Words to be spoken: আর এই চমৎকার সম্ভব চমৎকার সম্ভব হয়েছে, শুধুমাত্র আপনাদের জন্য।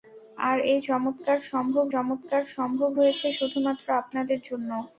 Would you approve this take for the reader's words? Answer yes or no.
yes